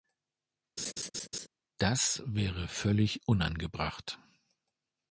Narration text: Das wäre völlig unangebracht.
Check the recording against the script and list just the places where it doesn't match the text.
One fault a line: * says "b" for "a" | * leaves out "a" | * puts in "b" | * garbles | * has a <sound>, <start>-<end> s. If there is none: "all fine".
* has a laugh, 0.8-1.5 s